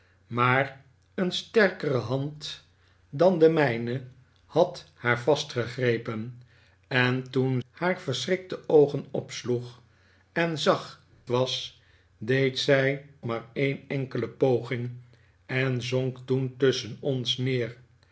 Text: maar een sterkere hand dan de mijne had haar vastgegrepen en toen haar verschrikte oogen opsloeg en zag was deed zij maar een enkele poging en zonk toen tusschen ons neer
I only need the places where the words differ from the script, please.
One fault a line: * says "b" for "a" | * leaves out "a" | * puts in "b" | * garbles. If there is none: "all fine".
all fine